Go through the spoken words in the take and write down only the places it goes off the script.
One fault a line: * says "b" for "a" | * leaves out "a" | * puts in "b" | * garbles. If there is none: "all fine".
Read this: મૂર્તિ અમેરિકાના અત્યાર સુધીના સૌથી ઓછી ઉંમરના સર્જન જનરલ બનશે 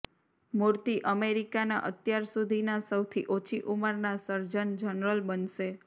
all fine